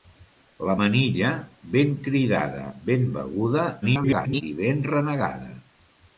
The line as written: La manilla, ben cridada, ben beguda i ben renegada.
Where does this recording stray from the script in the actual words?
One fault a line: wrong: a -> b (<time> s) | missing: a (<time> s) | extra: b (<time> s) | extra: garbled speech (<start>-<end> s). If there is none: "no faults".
extra: garbled speech (3.8-4.4 s)